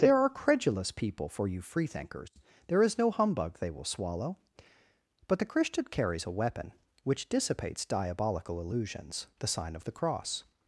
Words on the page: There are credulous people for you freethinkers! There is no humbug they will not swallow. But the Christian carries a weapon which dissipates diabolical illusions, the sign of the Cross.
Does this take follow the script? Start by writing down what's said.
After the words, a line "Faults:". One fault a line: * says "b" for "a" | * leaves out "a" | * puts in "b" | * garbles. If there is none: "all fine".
There are credulous people for you freethinkers! There is no humbug they will swallow. But the Christian carries a weapon which dissipates diabolical illusions, the sign of the Cross.
Faults:
* leaves out "not"